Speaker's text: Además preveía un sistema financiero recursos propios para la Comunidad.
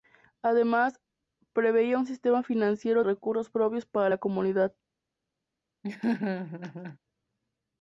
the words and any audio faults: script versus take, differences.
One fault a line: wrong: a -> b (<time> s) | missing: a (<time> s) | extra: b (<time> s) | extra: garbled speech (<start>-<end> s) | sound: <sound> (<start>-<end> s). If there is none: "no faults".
sound: laugh (5.8-7.0 s)